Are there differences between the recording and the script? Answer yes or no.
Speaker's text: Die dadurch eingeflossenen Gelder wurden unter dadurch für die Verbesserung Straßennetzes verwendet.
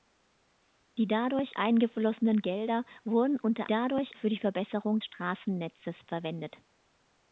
no